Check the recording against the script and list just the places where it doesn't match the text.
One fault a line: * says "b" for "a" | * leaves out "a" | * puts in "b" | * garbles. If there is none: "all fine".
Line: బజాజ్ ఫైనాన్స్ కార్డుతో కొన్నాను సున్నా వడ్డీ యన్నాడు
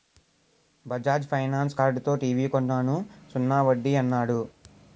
* puts in "టీవీ"